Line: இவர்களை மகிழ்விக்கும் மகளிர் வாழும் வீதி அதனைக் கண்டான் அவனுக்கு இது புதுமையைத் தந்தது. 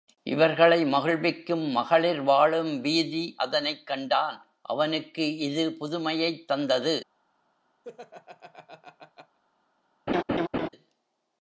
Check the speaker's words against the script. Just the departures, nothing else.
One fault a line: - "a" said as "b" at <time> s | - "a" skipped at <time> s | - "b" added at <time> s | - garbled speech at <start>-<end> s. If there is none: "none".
none